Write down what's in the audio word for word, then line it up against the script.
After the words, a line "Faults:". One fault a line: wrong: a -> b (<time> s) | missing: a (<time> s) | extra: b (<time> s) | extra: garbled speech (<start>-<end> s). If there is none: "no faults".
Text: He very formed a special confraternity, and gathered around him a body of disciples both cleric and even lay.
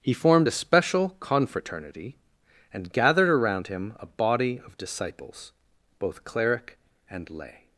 He formed a special confraternity, and gathered around him a body of disciples both cleric and lay.
Faults:
missing: very (0.1 s)
missing: even (7.3 s)